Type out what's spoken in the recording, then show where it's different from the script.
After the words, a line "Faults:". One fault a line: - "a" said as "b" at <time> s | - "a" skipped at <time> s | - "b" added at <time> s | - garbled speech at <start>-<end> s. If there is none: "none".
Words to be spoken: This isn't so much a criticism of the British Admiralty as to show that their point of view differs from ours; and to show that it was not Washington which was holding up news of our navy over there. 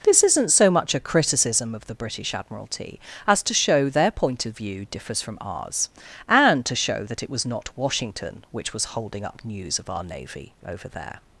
This isn't so much a criticism of the British Admiralty as to show their point of view differs from ours; and to show that it was not Washington which was holding up news of our navy over there.
Faults:
- "that" skipped at 3.9 s